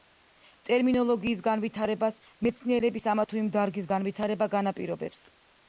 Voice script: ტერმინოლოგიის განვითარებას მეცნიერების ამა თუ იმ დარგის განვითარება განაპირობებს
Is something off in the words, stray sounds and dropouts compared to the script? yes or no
no